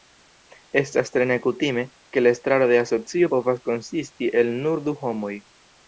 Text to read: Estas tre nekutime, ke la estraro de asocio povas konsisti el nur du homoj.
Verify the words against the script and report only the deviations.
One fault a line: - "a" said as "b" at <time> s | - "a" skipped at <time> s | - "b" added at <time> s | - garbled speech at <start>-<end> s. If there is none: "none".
none